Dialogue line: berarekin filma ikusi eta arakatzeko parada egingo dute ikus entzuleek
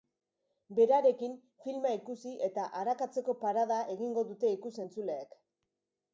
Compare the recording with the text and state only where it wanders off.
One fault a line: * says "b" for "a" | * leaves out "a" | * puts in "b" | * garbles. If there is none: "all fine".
all fine